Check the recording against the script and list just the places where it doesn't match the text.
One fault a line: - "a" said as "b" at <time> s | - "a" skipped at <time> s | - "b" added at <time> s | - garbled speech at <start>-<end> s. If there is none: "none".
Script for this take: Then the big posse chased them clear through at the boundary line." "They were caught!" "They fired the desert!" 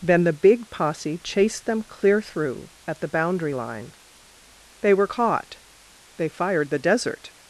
none